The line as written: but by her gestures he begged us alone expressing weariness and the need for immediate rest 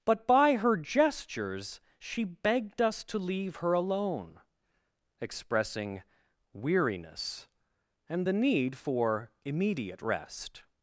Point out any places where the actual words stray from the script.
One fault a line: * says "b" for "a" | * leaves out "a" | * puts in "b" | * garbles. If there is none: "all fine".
* says "she" for "he"
* puts in "to leave her"